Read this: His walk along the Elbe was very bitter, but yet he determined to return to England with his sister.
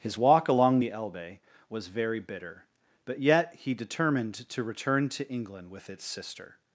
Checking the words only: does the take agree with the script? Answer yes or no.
no